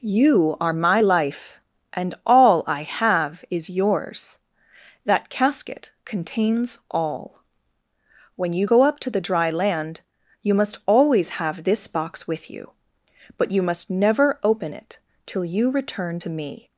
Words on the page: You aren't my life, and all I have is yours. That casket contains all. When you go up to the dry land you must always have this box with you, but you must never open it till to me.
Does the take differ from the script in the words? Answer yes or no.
yes